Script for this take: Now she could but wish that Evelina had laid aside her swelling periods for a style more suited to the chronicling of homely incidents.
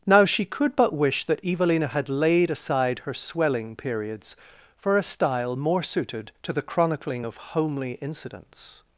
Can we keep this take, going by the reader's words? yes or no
yes